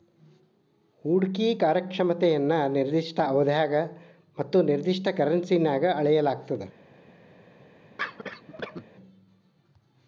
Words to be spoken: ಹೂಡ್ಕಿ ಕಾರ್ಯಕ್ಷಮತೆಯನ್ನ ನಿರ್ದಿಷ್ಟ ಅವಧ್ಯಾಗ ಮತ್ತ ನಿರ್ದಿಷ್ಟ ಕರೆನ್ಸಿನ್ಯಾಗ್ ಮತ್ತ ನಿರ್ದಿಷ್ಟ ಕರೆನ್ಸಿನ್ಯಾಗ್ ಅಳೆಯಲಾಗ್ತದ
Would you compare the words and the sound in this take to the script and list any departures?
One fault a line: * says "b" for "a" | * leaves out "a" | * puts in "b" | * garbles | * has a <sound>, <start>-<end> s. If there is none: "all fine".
* leaves out "ಮತ್ತ ನಿರ್ದಿಷ್ಟ ಕರೆನ್ಸಿನ್ಯಾಗ್"
* has a cough, 8.0-8.8 s